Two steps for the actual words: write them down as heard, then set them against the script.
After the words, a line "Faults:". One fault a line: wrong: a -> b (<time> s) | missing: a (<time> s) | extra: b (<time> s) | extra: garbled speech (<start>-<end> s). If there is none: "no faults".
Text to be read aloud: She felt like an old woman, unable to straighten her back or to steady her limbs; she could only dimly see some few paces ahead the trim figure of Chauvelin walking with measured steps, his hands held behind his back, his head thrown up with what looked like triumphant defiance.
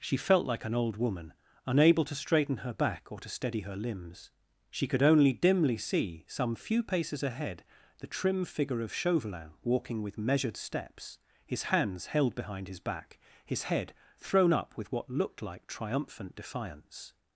She felt like an old woman, unable to straighten her back or to steady her limbs; she could only dimly see some few paces ahead the trim figure of Chauvelin walking with measured steps, his hands held behind his back, his head thrown up with what looked like triumphant defiance.
Faults:
no faults